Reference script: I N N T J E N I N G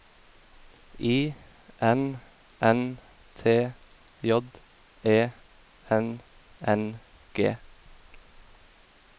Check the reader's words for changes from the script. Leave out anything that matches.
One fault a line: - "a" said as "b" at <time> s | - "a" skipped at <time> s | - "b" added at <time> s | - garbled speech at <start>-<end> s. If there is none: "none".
- "I" skipped at 6.2 s